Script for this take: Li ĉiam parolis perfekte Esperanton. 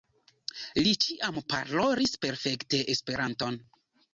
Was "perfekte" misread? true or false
false